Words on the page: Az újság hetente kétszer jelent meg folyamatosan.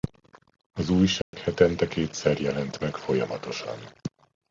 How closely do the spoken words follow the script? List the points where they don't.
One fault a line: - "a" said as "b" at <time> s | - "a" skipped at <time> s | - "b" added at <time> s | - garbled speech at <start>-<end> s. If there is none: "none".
none